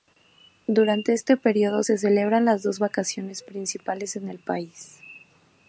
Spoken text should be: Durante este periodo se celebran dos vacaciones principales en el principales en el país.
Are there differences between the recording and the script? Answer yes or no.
yes